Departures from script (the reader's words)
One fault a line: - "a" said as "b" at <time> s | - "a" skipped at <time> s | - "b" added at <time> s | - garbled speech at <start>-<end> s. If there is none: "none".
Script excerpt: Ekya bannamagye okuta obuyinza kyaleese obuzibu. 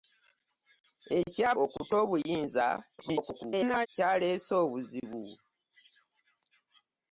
- "bannamagye" skipped at 1.5 s
- garbled speech at 3.0-3.9 s